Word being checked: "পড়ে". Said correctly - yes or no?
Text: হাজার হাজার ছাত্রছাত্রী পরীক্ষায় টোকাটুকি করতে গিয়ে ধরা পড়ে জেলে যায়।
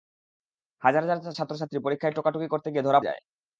no